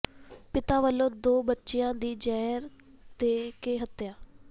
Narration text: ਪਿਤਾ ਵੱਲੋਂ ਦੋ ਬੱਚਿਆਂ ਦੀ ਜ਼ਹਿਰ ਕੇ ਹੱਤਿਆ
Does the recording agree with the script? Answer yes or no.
no